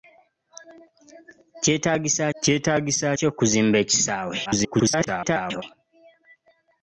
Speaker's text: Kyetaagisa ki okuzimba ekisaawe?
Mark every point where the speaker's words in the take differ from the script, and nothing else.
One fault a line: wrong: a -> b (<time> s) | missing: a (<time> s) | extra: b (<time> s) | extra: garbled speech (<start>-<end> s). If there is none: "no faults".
extra: kyetaagisa (2.4 s)
extra: garbled speech (4.5-5.6 s)